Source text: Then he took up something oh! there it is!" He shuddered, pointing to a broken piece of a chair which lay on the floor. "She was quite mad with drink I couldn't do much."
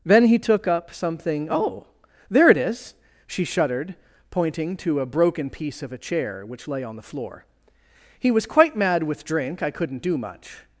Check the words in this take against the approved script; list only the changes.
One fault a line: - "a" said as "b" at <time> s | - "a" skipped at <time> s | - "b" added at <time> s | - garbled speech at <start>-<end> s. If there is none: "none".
- "He" said as "She" at 3.3 s
- "She" said as "He" at 8.2 s